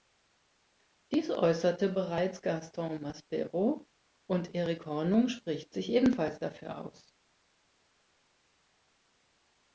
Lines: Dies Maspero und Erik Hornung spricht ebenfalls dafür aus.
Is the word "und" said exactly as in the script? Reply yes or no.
yes